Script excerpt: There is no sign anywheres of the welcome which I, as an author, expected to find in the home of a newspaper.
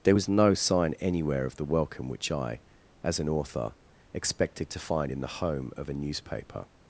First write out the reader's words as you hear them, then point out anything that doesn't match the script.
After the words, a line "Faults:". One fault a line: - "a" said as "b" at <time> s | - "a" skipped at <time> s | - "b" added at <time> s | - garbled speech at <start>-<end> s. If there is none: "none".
There was no sign anywhere of the welcome which I, as an author, expected to find in the home of a newspaper.
Faults:
- "is" said as "was" at 0.1 s
- "anywheres" said as "anywhere" at 1.0 s